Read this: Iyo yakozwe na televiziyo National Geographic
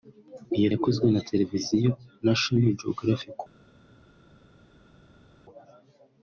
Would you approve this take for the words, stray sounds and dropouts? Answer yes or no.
yes